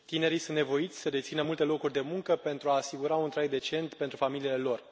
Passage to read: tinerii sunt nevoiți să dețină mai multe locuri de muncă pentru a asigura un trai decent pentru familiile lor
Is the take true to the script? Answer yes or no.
no